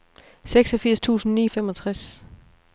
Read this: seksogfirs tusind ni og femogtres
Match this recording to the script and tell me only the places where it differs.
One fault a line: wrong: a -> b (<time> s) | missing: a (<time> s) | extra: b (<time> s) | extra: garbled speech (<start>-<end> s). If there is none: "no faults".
no faults